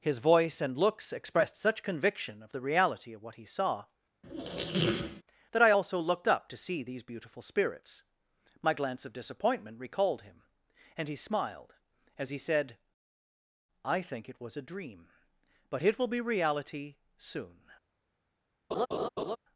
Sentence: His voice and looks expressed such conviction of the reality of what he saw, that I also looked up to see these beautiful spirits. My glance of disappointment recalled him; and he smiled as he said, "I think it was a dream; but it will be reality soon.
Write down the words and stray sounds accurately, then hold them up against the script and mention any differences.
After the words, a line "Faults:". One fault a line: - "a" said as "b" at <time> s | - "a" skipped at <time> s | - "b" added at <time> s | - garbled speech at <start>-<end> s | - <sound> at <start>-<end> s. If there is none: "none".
His voice and looks expressed such conviction of the reality of what he saw, that I also looked up to see these beautiful spirits. My glance of disappointment recalled him; and he smiled as he said, "I think it was a dream; but it will be reality soon.
Faults:
- squeak at 4.2-5.2 s
- laugh at 18.7-19.4 s